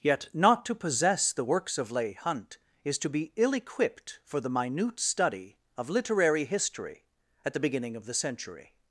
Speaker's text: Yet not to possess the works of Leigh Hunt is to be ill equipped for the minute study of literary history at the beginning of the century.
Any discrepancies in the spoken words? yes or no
no